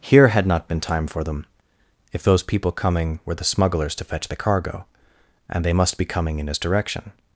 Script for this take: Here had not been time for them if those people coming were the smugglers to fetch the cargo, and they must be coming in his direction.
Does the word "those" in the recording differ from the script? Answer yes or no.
no